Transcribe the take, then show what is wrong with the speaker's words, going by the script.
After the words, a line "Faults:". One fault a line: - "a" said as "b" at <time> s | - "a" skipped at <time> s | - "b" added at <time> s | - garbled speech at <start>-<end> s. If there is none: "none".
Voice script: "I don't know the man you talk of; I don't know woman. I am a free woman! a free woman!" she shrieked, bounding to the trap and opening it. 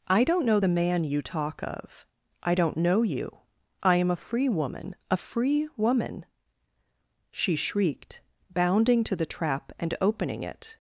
"I don't know the man you talk of; I don't know you. I am a free woman! a free woman!" she shrieked, bounding to the trap and opening it.
Faults:
- "woman" said as "you" at 3.0 s